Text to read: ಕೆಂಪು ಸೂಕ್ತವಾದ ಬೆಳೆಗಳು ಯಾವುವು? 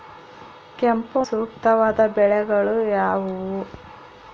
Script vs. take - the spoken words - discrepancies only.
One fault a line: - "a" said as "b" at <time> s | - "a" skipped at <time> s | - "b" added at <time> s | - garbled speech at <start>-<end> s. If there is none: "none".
none